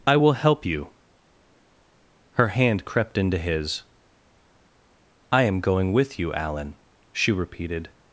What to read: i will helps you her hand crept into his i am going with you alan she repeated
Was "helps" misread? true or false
true